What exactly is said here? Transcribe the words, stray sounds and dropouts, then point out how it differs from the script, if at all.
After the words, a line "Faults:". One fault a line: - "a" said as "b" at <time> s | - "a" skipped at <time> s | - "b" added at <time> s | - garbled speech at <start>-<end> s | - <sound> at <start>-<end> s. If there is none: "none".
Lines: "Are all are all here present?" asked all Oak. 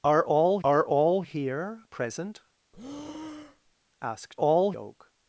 "Are all are all here present?" asked all Oak.
Faults:
- breath at 2.7-3.8 s